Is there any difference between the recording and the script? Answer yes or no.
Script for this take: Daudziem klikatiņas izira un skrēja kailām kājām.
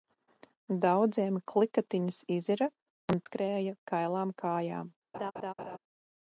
no